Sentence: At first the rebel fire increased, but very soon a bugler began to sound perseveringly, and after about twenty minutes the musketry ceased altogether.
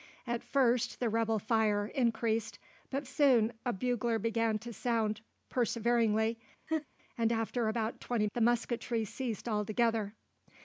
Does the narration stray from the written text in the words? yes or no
yes